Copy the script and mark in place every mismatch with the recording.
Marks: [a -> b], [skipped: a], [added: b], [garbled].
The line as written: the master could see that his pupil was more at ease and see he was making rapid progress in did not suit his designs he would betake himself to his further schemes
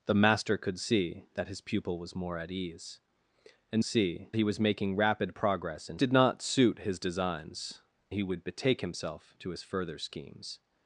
the master could see that his pupil was more at ease and see he was making rapid progress in did not suit his designs he would betake himself to his further schemes